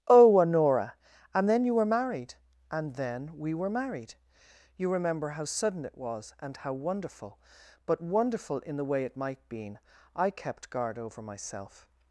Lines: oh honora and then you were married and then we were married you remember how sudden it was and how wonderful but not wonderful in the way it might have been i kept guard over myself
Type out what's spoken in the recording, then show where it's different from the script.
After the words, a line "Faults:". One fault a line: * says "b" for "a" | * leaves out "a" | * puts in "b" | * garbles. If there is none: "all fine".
oh honora and then you were married and then we were married you remember how sudden it was and how wonderful but wonderful in the way it might been i kept guard over myself
Faults:
* leaves out "not"
* leaves out "have"